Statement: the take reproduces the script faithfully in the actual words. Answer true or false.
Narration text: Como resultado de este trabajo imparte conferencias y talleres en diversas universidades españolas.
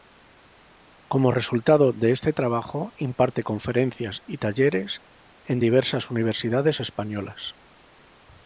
true